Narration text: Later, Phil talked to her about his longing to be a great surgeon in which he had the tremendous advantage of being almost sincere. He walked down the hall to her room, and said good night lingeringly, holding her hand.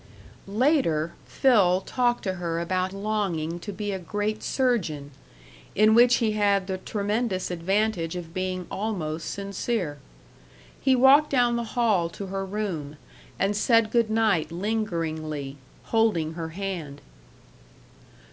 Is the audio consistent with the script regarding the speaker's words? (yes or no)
no